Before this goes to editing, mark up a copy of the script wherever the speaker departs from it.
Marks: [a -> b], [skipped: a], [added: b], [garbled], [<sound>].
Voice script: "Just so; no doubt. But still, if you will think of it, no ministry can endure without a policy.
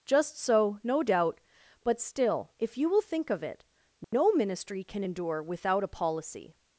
"Just so; no doubt. But still, if you will think of it, no [dropout] ministry can endure without a policy.